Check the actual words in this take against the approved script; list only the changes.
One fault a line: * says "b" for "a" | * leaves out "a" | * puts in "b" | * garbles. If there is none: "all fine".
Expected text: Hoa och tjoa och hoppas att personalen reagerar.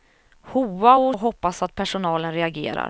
* leaves out "tjoa"